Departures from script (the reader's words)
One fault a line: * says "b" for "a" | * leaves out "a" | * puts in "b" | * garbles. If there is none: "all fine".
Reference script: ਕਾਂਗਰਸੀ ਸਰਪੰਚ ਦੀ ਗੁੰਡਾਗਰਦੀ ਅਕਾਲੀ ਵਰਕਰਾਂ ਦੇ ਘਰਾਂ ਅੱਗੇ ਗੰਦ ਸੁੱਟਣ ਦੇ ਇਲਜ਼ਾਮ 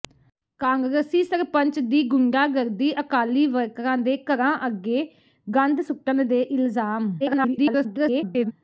* garbles